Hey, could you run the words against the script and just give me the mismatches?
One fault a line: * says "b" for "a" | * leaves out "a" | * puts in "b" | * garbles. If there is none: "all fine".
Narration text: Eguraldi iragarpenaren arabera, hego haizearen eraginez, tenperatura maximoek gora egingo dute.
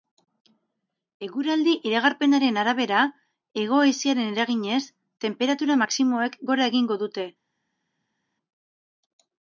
all fine